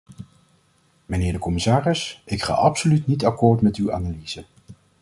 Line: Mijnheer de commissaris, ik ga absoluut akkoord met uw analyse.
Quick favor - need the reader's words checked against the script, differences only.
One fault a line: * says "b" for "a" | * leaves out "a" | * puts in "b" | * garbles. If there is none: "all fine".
* puts in "niet"